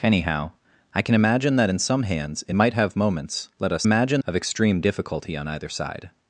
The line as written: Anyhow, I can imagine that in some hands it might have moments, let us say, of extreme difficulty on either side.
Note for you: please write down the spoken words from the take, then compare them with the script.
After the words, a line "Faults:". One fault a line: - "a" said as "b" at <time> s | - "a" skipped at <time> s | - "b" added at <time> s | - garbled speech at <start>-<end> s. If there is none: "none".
Anyhow, I can imagine that in some hands it might have moments, let us imagine, of extreme difficulty on either side.
Faults:
- "say" said as "imagine" at 3.8 s